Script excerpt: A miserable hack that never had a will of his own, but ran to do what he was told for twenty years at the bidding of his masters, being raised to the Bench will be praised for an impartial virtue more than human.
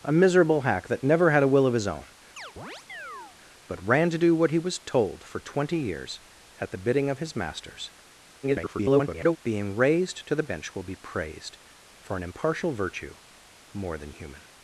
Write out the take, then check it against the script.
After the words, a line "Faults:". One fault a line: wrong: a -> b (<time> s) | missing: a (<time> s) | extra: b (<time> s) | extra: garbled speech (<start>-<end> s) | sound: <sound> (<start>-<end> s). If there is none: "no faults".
A miserable hack that never had a will of his own, but ran to do what he was told for twenty years at the bidding of his masters, [garbled] being raised to the Bench will be praised for an impartial virtue more than human.
Faults:
sound: chirp (2.4-3.4 s)
extra: garbled speech (8.4-9.4 s)